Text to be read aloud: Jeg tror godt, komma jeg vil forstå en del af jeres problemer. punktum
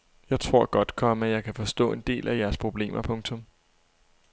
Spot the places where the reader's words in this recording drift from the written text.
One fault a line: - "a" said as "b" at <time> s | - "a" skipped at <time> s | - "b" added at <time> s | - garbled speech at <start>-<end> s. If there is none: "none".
- "vil" said as "kan" at 1.4 s